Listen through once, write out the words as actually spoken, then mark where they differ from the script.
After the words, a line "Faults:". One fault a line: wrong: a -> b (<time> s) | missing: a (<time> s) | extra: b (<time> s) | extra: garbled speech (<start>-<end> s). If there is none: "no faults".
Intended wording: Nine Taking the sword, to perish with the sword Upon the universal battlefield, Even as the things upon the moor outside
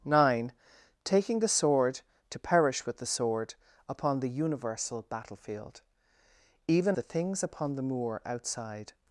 Nine Taking the sword, to perish with the sword Upon the universal battlefield, Even the things upon the moor outside
Faults:
missing: as (7.0 s)